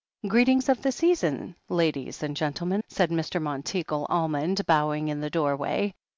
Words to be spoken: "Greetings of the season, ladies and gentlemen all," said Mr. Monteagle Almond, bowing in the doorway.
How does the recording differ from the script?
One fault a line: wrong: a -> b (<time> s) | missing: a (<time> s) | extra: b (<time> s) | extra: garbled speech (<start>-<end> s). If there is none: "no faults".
missing: all (2.8 s)